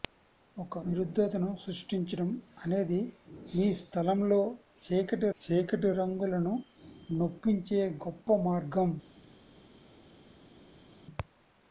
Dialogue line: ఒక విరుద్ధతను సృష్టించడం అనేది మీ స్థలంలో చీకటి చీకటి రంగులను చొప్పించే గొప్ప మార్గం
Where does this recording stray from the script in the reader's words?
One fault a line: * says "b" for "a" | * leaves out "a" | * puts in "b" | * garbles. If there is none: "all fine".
all fine